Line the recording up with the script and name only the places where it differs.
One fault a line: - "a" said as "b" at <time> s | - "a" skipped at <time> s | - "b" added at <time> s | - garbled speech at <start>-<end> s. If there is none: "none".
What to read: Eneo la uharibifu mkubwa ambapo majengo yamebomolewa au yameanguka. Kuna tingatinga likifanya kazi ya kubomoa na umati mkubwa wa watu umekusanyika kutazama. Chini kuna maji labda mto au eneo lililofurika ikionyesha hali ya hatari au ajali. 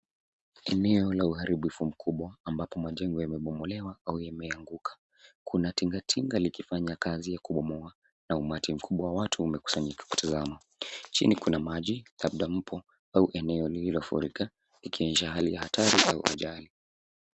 none